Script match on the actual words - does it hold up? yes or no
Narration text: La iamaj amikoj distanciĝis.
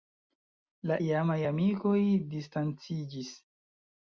yes